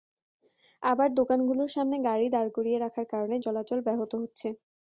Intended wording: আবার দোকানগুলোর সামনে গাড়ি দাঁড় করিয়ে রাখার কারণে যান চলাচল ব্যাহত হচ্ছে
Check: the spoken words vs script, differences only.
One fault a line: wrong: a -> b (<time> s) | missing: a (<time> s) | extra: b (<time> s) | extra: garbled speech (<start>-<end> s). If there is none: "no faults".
missing: যান (3.4 s)